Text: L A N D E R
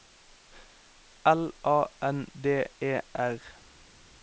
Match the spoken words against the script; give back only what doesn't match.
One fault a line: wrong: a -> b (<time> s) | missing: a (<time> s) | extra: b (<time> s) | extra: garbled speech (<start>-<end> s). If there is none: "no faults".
no faults